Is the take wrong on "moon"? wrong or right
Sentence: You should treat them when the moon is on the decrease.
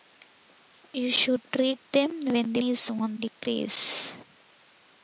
wrong